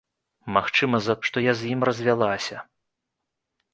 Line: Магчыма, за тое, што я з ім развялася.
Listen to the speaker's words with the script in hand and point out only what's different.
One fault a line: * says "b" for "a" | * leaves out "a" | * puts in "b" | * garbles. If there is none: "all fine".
* leaves out "тое"